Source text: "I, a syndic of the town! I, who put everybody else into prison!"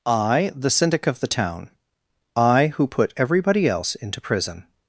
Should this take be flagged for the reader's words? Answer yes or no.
yes